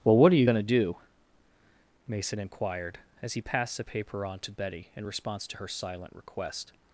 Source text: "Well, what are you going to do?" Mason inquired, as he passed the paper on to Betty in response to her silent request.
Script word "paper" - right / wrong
right